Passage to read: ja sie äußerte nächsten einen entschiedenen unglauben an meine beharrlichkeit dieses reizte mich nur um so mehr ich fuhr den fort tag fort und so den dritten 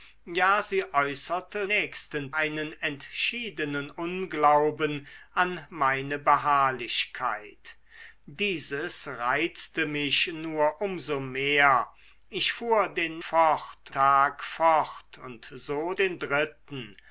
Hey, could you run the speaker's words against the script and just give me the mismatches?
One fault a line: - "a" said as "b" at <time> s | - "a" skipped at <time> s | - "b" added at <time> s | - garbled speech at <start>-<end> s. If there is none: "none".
none